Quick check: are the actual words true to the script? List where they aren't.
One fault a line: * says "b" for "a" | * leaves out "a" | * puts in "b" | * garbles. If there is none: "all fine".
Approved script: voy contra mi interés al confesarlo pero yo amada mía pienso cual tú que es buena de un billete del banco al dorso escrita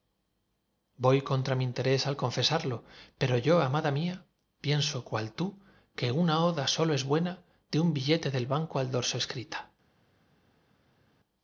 * puts in "una oda sólo"